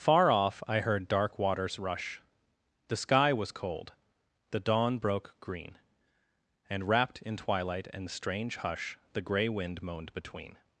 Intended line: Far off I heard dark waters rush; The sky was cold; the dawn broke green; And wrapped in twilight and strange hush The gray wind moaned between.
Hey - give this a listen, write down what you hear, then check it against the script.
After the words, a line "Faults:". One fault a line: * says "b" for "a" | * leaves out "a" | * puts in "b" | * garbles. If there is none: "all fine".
Far off I heard dark waters rush; The sky was cold; the dawn broke green; And wrapped in twilight and strange hush The gray wind moaned between.
Faults:
all fine